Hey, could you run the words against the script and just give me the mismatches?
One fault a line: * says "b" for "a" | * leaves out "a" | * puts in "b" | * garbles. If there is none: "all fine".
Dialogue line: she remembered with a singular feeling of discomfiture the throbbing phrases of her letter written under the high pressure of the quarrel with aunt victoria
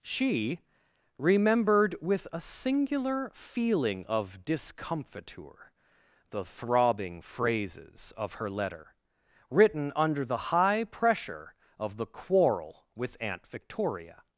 all fine